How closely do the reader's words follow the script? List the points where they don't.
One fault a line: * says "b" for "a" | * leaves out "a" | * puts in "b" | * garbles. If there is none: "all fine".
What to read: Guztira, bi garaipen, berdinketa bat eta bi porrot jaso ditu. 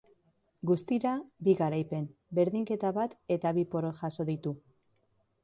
all fine